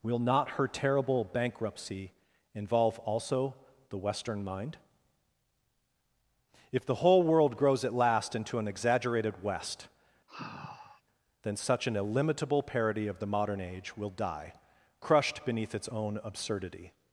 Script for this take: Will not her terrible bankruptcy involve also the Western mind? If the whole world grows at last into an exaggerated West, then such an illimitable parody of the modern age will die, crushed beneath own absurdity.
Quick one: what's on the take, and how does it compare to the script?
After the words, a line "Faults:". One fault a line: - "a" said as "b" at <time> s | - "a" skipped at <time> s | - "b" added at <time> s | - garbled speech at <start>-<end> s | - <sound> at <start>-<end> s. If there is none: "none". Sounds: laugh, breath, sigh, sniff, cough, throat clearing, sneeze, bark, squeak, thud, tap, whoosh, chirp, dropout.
Will not her terrible bankruptcy involve also the Western mind? If the whole world grows at last into an exaggerated West, then such an illimitable parody of the modern age will die, crushed beneath its own absurdity.
Faults:
- sigh at 10.3-11.0 s
- "its" added at 15.7 s